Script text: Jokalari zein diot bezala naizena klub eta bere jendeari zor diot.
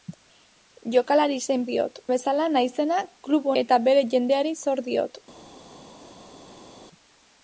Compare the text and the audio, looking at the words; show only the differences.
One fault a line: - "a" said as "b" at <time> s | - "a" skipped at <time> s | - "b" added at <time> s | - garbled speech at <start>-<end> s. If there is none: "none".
none